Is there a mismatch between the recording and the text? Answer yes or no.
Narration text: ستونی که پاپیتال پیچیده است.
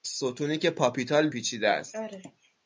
no